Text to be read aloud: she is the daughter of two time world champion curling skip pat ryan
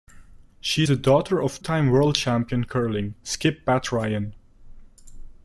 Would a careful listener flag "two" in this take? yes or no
yes